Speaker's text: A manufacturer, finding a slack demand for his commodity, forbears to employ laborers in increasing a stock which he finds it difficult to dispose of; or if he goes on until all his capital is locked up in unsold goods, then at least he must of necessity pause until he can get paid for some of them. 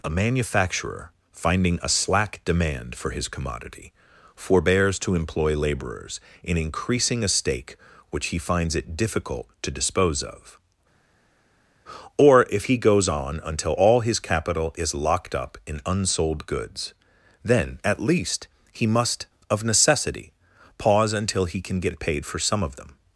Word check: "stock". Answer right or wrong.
wrong